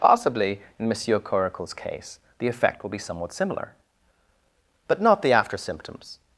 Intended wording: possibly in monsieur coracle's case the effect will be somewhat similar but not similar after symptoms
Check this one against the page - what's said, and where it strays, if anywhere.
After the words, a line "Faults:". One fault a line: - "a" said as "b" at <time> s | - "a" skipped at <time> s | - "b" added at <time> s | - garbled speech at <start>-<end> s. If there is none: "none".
possibly in monsieur coracle's case the effect will be somewhat similar but not the after symptoms
Faults:
- "similar" said as "the" at 5.2 s